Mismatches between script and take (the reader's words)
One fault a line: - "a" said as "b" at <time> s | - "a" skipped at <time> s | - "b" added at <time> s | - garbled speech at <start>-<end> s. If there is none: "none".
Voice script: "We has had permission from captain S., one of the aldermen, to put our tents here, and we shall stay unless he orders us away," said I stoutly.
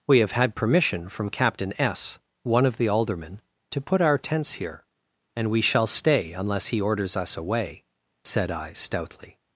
- "has" said as "have" at 0.2 s